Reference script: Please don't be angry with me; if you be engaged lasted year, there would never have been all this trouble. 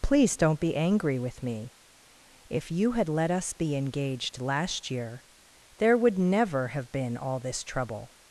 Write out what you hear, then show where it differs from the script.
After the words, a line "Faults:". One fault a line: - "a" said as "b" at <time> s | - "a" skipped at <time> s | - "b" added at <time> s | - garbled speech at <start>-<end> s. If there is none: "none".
Please don't be angry with me; if you had let us be engaged last year, there would never have been all this trouble.
Faults:
- "had let us" added at 2.9 s
- "lasted" said as "last" at 4.4 s